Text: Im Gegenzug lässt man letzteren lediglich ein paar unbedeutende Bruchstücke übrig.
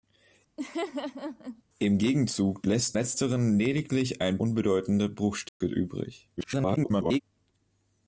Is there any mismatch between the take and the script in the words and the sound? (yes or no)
yes